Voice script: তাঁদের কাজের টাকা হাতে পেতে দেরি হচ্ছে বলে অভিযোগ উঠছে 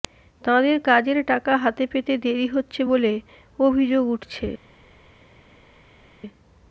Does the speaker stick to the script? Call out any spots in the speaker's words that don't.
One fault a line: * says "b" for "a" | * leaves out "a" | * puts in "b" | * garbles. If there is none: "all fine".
all fine